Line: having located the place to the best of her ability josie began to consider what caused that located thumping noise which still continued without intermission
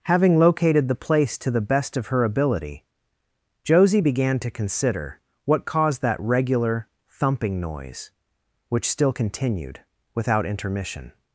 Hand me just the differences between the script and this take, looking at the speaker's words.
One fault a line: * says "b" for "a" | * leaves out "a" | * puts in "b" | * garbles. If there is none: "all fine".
* says "regular" for "located"